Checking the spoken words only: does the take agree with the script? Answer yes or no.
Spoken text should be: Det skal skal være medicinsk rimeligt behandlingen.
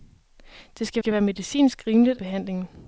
yes